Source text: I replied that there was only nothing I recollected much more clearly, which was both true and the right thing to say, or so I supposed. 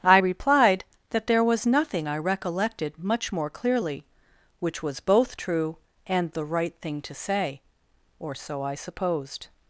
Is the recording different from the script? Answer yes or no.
yes